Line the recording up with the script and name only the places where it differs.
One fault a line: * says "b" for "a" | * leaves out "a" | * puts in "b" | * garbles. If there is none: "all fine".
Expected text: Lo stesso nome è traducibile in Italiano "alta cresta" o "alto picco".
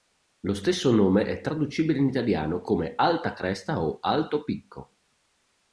* puts in "come"